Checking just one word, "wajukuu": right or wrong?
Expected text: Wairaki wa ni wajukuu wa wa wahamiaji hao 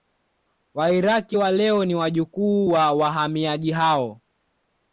right